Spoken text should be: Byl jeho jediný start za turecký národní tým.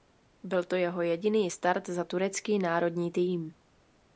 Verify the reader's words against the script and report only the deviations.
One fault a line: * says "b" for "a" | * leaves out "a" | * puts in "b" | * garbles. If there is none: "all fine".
* puts in "to"